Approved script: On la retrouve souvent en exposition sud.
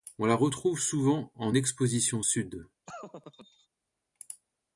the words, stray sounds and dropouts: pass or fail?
fail